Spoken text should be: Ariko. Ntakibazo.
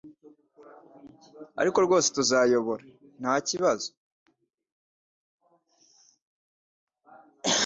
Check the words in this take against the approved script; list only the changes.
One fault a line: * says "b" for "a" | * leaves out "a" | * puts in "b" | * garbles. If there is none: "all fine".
* puts in "rwose tuzayobora"